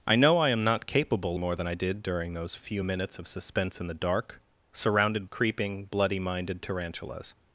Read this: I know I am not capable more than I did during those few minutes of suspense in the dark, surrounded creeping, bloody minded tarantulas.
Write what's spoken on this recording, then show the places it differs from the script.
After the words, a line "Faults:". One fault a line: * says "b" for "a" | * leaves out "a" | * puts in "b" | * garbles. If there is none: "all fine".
I know I am not capable more than I did during those few minutes of suspense in the dark, surrounded creeping, bloody minded tarantulas.
Faults:
all fine